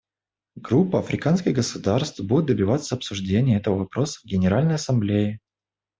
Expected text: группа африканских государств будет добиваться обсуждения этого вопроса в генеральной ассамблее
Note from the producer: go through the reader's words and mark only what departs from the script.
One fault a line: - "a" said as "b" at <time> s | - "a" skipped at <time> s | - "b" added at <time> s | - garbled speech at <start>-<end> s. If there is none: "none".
none